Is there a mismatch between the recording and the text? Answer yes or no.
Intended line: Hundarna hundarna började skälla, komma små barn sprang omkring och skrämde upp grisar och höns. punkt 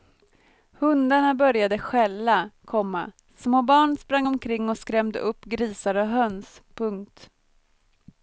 yes